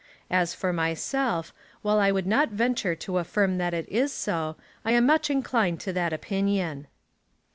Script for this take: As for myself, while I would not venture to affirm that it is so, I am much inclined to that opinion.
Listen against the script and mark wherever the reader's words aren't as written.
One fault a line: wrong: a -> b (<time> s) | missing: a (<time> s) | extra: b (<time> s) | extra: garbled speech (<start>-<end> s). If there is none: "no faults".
no faults